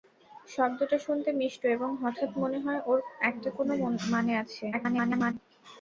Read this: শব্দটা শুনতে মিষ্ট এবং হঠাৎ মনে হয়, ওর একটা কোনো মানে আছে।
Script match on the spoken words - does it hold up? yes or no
no